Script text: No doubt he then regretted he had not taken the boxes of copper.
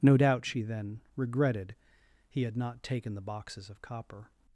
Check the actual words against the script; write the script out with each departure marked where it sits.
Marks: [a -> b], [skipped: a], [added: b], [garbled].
No doubt [he -> she] then regretted he had not taken the boxes of copper.